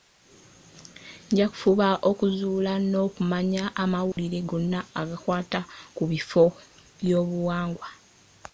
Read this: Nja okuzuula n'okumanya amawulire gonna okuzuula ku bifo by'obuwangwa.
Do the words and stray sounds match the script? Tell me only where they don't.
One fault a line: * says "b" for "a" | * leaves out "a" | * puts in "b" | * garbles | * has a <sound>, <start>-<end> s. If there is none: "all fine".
* puts in "kufuba"
* has a dropout, 4.1-4.2 s
* says "agakwata" for "okuzuula"